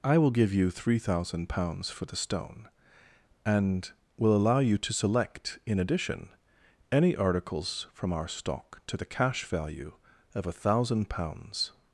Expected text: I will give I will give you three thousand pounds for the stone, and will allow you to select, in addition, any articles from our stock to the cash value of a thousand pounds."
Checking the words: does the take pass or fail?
fail